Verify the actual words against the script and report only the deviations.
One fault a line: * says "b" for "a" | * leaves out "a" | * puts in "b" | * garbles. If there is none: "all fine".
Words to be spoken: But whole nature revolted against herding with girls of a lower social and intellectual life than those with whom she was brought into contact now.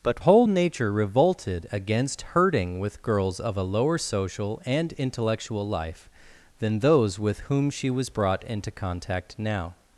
all fine